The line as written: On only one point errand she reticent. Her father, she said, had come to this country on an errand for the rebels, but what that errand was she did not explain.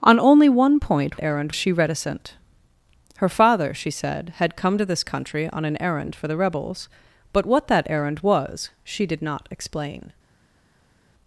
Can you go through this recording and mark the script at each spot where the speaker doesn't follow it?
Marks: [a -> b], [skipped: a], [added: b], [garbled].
On only one point errand she reticent. Her father, she said, had come to this country on an errand for the rebels, but what that errand was she did not explain.